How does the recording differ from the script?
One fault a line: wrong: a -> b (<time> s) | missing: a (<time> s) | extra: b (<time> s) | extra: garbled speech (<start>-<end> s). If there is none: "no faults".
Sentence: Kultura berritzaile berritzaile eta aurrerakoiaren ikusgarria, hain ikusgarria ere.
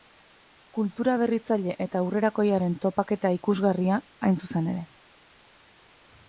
missing: berritzaile (1.7 s)
extra: topaketa (2.9 s)
wrong: ikusgarria -> zuzen (4.5 s)